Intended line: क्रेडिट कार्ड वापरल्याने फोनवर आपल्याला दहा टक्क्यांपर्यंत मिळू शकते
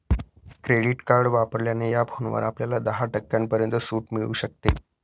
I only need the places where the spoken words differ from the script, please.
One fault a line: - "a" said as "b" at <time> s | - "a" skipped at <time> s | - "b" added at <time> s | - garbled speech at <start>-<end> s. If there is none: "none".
- "या" added at 1.9 s
- "सूट" added at 3.8 s